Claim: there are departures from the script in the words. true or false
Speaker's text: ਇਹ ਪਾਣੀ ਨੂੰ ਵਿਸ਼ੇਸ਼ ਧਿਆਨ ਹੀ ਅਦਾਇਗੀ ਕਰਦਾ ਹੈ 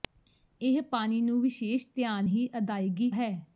true